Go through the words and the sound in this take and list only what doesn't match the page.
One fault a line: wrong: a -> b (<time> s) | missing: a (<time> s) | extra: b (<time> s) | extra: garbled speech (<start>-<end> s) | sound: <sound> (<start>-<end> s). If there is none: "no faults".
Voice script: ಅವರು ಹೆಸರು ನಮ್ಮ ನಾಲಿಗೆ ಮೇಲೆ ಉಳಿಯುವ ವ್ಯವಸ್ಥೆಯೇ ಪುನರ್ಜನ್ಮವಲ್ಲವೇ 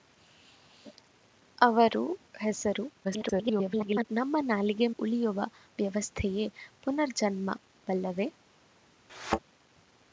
extra: garbled speech (3.0-4.0 s)
missing: ಮೇಲೆ (4.9 s)
sound: thud (9.1-9.4 s)